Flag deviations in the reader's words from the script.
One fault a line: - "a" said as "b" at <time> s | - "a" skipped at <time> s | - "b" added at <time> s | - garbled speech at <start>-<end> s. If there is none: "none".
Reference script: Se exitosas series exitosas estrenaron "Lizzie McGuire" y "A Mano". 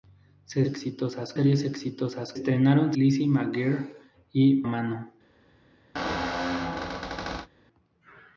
none